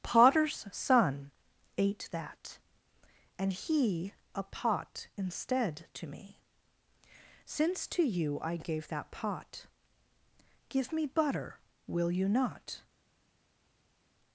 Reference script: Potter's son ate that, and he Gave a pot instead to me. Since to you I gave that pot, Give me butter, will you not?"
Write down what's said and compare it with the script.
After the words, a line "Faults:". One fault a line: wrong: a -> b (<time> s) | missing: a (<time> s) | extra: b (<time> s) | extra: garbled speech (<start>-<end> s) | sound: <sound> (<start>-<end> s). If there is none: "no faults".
Potter's son ate that, and he A pot instead to me. Since to you I gave that pot, Give me butter, will you not?"
Faults:
missing: Gave (4.1 s)